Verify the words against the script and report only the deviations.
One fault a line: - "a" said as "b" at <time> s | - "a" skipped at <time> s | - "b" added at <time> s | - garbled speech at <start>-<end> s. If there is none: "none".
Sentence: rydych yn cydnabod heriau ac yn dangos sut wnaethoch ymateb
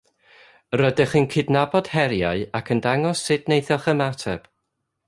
none